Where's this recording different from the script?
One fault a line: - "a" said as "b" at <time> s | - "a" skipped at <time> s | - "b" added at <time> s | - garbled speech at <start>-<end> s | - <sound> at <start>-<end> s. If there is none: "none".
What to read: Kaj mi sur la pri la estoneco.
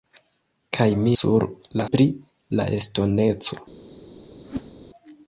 - whoosh at 4.4-4.7 s